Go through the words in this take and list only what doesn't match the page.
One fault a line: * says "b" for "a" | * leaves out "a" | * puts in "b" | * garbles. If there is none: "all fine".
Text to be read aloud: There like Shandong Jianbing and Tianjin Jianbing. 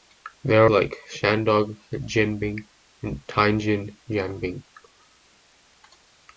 all fine